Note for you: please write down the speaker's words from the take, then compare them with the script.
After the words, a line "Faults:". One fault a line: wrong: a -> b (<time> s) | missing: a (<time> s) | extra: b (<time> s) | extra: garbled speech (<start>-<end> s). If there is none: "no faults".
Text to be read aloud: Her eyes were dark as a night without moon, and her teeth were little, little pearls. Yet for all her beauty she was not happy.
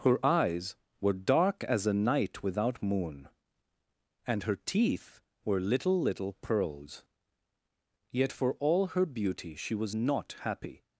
Her eyes were dark as a night without moon, and her teeth were little, little pearls. Yet for all her beauty she was not happy.
Faults:
no faults